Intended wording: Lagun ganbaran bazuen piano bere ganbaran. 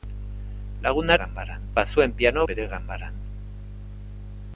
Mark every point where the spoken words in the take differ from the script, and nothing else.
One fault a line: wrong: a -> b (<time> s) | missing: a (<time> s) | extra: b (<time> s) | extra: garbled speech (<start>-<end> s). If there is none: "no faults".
no faults